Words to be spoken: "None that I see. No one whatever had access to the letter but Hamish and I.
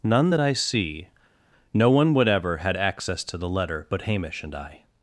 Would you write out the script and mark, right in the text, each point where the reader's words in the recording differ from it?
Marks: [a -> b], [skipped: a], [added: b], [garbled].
"None that I see. No one whatever had access to the letter but Hamish and I.